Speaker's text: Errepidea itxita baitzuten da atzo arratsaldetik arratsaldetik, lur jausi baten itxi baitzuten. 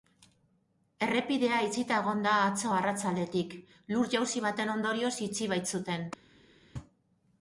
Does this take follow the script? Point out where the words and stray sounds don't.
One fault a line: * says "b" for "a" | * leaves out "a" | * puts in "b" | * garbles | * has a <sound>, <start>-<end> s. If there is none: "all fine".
* says "egon" for "baitzuten"
* leaves out "arratsaldetik"
* puts in "ondorioz"